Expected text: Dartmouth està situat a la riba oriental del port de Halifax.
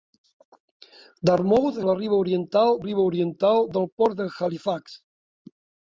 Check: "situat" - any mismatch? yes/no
yes